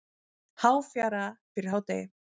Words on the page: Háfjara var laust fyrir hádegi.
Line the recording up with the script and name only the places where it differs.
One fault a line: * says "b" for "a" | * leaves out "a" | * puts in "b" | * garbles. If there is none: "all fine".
* leaves out "var laust"